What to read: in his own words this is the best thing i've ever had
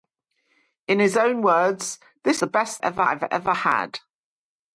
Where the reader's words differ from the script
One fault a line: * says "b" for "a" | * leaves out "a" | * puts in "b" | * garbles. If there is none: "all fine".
* leaves out "is"
* says "ever" for "thing"